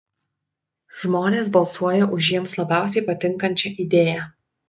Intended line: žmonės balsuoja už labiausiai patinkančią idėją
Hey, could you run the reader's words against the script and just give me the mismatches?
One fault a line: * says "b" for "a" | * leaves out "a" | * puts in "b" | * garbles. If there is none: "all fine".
* puts in "jiems"